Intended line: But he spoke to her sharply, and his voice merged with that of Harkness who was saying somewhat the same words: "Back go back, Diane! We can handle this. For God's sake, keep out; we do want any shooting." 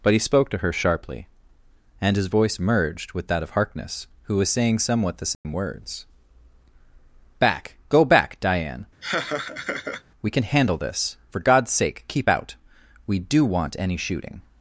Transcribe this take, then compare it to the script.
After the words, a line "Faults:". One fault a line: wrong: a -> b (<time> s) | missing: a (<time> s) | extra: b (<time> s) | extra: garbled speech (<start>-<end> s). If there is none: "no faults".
But he spoke to her sharply, and his voice merged with that of Harkness who was saying somewhat the same words: "Back go back, Diane! We can handle this. For God's sake, keep out; we do want any shooting."
Faults:
no faults